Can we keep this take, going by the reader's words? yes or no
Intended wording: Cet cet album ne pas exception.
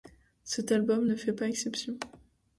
no